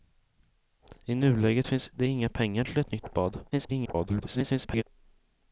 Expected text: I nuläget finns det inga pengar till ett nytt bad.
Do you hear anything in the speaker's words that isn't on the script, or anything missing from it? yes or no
yes